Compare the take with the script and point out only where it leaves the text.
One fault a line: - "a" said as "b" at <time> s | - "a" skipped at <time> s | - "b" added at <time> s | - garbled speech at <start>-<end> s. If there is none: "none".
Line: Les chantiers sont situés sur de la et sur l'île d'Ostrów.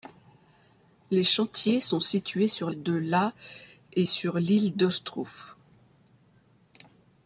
none